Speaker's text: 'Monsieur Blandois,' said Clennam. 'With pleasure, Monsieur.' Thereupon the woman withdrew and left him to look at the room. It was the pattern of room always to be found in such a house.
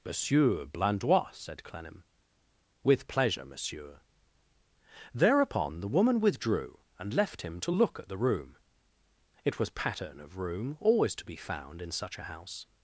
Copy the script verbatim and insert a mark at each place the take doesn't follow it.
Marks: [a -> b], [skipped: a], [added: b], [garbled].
'Monsieur Blandois,' said Clennam. 'With pleasure, Monsieur.' Thereupon the woman withdrew and left him to look at the room. It was [skipped: the] pattern of room always to be found in such a house.